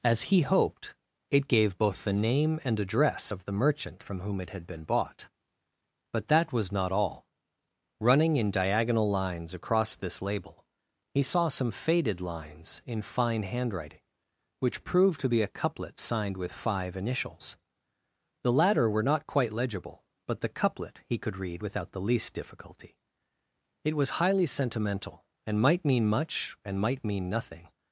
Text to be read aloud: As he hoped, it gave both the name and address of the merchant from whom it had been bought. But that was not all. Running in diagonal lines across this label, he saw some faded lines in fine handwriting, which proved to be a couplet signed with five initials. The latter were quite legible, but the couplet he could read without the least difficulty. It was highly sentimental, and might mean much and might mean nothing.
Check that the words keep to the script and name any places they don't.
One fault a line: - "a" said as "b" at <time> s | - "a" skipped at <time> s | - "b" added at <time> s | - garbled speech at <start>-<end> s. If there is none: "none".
- "not" added at 19.0 s